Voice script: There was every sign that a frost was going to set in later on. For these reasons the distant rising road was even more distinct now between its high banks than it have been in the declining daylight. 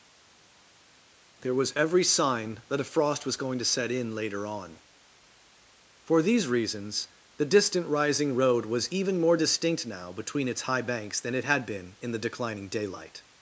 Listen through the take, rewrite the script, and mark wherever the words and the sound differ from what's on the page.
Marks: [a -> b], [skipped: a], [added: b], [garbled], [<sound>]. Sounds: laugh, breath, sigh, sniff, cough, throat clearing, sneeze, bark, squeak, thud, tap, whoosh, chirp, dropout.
There was every sign that a frost was going to set in later on. For these reasons the distant rising road was even more distinct now between its high banks than it [have -> had] been in the declining daylight.